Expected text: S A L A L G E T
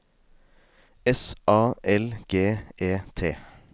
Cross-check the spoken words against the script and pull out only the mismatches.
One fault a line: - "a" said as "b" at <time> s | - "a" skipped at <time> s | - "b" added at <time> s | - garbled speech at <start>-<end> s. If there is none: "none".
- "A L" skipped at 2.1 s